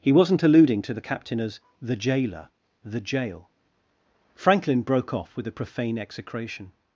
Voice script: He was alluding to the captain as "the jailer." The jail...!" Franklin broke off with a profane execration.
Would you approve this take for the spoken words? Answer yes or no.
no